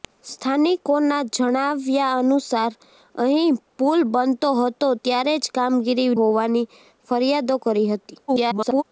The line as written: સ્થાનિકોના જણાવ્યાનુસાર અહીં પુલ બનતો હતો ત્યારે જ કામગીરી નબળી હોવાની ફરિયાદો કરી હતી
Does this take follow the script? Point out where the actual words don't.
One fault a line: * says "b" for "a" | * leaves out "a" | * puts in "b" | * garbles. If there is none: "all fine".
* leaves out "નબળી"
* garbles